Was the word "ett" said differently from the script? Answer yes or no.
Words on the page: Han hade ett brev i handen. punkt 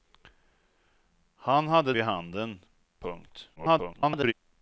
yes